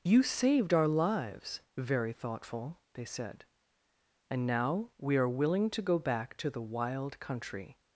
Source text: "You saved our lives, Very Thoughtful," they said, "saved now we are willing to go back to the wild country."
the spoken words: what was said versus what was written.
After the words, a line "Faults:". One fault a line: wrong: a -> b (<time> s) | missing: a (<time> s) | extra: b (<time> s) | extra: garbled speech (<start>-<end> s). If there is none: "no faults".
"You saved our lives, Very Thoughtful," they said, "and now we are willing to go back to the wild country."
Faults:
wrong: saved -> and (4.3 s)